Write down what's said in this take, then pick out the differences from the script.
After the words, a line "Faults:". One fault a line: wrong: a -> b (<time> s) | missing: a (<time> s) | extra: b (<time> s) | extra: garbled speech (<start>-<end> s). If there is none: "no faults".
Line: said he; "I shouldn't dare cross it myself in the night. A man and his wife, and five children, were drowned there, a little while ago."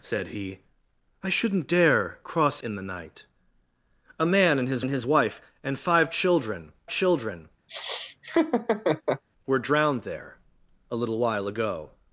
said he; "I shouldn't dare cross in the night. A man and his and his wife, and five children children, were drowned there, a little while ago."
Faults:
missing: it myself (2.6 s)
extra: and his (4.8 s)
extra: children (6.9 s)